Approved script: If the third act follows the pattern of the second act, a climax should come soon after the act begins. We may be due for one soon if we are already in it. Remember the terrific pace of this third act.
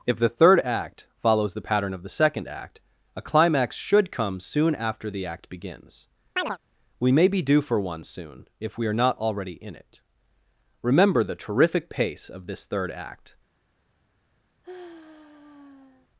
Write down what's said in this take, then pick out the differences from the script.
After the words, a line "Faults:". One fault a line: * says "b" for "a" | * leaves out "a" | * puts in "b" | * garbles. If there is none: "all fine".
If the third act follows the pattern of the second act, a climax should come soon after the act begins. We may be due for one soon if we are not already in it. Remember the terrific pace of this third act.
Faults:
* puts in "not"